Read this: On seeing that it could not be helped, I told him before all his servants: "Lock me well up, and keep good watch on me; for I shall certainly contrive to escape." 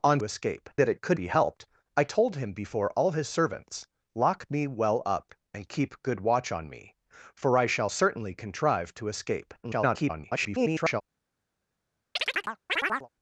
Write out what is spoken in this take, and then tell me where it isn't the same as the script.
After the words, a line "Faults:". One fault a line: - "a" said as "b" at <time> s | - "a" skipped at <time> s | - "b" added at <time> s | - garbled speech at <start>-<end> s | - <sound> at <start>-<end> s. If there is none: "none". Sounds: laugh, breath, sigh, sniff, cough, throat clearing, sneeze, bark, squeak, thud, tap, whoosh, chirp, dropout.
On escape that it could be helped, I told him before all his servants: "Lock me well up, and keep good watch on me; for I shall certainly contrive to escape." [garbled]
Faults:
- "seeing" said as "escape" at 0.2 s
- "not" skipped at 1.2 s
- garbled speech at 9.6-11.0 s
- chirp at 12.2-13.1 s